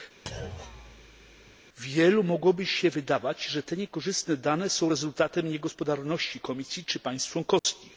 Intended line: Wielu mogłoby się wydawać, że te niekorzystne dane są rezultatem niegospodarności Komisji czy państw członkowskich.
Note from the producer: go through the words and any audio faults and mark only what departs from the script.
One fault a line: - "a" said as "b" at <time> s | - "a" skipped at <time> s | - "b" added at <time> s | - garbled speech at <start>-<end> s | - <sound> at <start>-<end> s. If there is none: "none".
- thud at 0.3-1.6 s
- dropout at 7.6-7.6 s